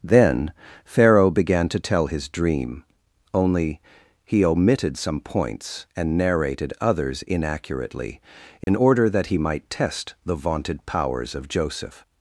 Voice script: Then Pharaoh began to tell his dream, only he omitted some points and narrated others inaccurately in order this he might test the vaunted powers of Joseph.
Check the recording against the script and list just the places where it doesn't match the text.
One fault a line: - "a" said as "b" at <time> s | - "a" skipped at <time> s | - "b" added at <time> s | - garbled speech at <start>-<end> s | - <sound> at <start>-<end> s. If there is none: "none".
- dropout at 8.6-8.7 s
- "this" said as "that" at 9.1 s